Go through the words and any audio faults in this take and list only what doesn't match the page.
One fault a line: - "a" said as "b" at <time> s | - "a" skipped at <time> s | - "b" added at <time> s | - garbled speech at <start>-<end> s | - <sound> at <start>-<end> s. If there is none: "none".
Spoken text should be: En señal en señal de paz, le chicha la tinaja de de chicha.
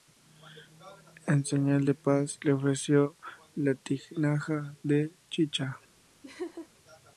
- "en señal" skipped at 1.9 s
- "chicha" said as "ofreció" at 2.5 s
- "de" skipped at 5.1 s
- laugh at 6.2-6.7 s